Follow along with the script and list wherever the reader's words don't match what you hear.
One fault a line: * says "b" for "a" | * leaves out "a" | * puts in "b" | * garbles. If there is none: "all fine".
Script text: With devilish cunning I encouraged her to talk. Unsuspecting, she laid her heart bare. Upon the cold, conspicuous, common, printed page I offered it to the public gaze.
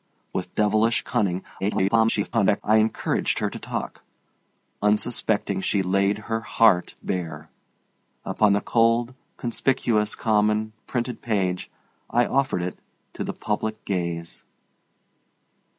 * garbles